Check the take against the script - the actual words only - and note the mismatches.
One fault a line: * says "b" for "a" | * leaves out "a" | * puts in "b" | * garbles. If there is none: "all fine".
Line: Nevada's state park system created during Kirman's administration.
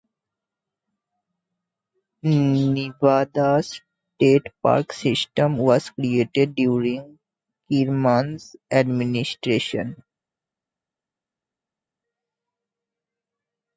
* puts in "was"